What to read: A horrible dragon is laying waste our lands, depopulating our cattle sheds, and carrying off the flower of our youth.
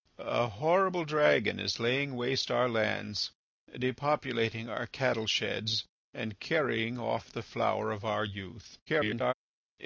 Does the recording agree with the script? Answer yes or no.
no